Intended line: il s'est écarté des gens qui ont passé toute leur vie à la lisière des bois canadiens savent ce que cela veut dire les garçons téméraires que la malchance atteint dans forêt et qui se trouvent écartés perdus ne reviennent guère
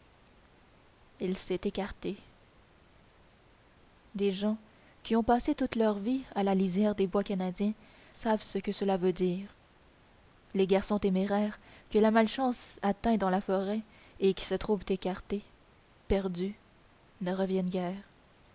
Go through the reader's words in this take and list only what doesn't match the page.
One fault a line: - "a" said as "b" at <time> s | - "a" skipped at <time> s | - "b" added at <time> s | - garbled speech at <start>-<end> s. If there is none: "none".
- "la" added at 13.3 s